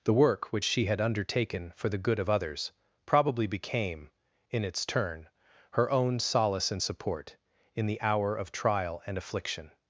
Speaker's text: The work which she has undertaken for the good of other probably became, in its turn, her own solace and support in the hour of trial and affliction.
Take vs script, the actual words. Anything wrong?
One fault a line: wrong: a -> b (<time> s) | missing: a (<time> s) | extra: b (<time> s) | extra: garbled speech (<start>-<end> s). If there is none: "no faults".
wrong: has -> had (0.8 s)
wrong: other -> others (2.3 s)